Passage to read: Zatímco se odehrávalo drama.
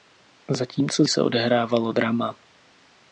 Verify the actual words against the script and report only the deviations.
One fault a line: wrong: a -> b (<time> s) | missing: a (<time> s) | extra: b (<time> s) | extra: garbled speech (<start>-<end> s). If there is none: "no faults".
no faults